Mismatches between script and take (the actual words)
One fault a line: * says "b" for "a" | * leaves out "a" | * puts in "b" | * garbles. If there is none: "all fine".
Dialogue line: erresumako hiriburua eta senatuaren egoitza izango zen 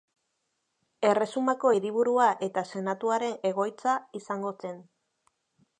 all fine